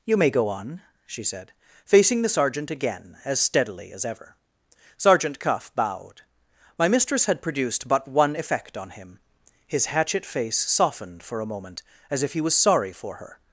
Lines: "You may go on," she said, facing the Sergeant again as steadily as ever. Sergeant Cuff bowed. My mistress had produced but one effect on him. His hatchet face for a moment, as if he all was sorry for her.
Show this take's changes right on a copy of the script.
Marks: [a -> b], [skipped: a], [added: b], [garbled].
"You may go on," she said, facing the Sergeant again as steadily as ever. Sergeant Cuff bowed. My mistress had produced but one effect on him. His hatchet face [added: softened] for a moment, as if he [skipped: all] was sorry for her.